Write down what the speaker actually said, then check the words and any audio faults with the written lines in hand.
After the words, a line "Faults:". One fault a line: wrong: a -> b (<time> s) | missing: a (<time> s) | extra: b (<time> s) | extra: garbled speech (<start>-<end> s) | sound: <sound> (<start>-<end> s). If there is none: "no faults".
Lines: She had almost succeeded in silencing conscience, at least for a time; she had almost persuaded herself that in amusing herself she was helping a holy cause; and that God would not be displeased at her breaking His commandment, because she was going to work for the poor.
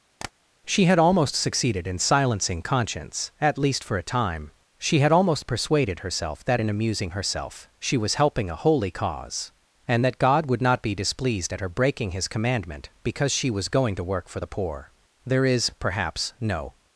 She had almost succeeded in silencing conscience, at least for a time; she had almost persuaded herself that in amusing herself she was helping a holy cause; and that God would not be displeased at her breaking His commandment, because she was going to work for the poor. There is, perhaps, no
Faults:
sound: tap (0.2-0.3 s)
extra: There is perhaps no (15.3 s)